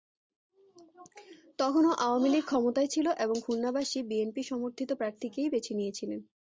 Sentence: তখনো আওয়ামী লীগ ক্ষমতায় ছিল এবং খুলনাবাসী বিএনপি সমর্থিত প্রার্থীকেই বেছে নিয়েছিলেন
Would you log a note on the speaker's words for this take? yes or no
no